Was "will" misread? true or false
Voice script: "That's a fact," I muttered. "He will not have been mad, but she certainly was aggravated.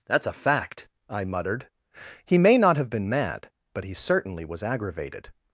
true